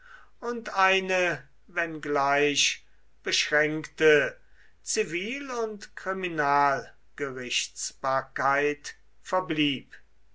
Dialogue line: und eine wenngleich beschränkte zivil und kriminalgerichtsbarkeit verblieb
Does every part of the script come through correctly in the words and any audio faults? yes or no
yes